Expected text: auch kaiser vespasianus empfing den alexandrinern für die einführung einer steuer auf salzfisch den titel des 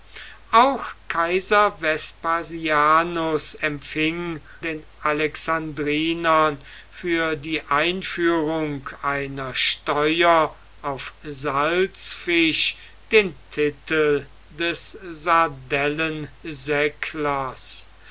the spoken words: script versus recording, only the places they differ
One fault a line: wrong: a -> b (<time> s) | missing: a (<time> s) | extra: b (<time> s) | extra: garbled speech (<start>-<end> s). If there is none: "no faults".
no faults